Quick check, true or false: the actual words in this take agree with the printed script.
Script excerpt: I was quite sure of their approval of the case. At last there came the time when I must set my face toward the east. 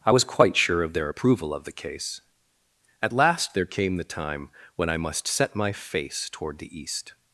true